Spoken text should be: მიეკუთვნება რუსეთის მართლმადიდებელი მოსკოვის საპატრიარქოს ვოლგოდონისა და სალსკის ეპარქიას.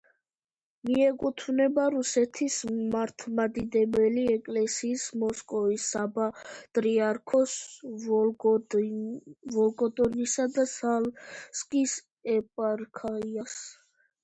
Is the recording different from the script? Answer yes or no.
yes